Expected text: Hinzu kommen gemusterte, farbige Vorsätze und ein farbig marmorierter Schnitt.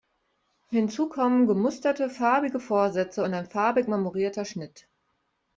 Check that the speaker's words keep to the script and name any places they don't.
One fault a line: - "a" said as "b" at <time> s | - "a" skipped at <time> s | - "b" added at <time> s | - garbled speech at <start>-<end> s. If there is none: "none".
none